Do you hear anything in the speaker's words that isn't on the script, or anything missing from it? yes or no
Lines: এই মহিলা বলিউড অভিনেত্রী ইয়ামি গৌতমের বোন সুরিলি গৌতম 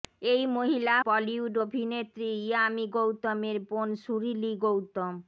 no